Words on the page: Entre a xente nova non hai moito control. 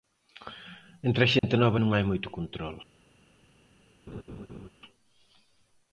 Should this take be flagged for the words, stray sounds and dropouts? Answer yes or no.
yes